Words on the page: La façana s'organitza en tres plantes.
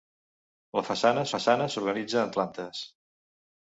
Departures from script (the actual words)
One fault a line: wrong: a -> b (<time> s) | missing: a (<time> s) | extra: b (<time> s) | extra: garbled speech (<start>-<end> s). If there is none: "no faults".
extra: façana (1.3 s)
missing: tres (2.4 s)